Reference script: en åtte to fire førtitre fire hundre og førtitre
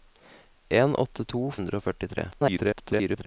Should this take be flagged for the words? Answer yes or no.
yes